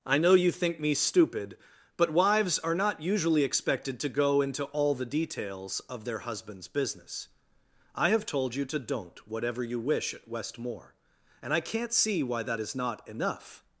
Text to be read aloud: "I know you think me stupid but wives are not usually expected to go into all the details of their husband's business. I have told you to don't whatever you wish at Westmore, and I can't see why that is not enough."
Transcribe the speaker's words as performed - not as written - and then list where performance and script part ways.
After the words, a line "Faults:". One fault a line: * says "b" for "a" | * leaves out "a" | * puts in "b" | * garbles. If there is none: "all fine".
"I know you think me stupid but wives are not usually expected to go into all the details of their husband's business. I have told you to don't whatever you wish at Westmore, and I can't see why that is not enough."
Faults:
all fine